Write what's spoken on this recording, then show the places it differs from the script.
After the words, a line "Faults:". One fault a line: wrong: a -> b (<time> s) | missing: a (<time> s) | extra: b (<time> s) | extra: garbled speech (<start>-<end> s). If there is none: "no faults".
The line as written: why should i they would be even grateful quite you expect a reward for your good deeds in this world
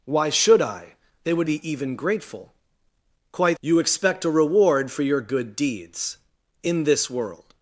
why should i they would be even grateful quite you expect a reward for your good deeds in this world
Faults:
no faults